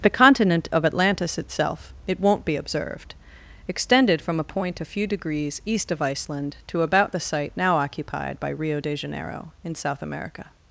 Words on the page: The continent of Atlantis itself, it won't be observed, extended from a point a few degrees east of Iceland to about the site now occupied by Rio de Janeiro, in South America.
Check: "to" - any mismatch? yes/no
no